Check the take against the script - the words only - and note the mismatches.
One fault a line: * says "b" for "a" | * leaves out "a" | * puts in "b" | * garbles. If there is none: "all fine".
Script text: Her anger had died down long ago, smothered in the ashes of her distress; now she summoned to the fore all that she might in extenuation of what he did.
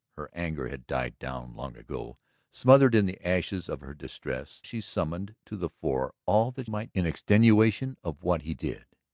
* leaves out "now"
* leaves out "she"